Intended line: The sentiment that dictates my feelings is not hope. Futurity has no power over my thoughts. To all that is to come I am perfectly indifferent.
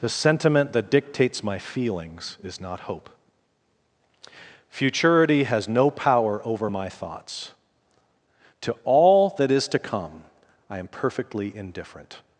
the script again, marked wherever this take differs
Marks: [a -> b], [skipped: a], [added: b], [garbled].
The sentiment that dictates my feelings is not hope. Futurity has no power over my thoughts. To all that is to come I am perfectly indifferent.